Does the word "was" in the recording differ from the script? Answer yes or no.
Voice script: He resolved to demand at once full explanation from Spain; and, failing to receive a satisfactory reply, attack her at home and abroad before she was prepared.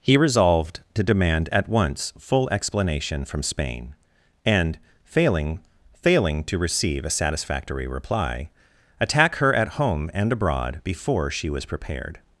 no